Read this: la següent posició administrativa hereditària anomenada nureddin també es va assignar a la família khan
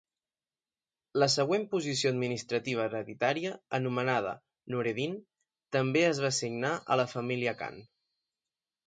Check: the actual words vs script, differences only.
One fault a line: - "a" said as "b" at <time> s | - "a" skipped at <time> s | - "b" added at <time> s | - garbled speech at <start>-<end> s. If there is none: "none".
none